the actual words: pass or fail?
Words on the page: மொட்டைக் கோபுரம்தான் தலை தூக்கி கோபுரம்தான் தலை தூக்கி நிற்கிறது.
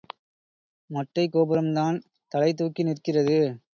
fail